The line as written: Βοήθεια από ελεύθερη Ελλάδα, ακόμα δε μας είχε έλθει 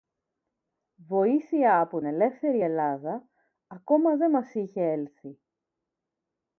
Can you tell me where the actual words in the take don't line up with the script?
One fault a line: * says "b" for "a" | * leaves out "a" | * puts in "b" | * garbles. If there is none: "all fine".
all fine